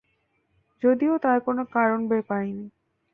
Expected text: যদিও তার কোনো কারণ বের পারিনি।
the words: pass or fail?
pass